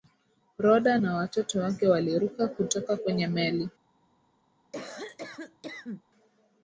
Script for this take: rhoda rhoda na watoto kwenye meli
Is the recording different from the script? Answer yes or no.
yes